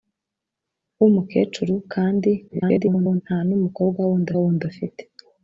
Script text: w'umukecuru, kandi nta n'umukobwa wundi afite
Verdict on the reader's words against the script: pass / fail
fail